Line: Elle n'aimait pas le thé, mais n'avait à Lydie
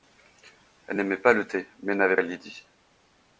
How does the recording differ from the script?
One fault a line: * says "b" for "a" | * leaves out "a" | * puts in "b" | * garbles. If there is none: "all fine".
all fine